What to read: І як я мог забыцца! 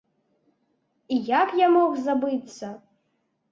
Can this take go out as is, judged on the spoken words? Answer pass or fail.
pass